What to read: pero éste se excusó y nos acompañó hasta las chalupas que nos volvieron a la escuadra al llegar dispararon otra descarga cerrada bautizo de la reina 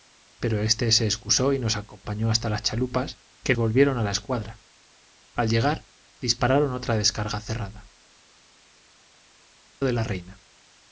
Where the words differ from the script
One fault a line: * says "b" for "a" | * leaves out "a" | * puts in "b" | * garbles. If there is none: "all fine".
* leaves out "nos"
* leaves out "bautizo"